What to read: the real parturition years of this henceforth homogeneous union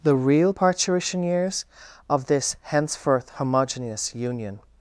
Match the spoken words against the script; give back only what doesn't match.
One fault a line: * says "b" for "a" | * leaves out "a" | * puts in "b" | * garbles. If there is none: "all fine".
all fine